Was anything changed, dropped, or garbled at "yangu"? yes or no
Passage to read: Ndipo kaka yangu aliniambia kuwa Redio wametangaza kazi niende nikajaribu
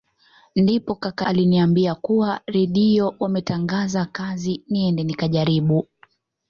yes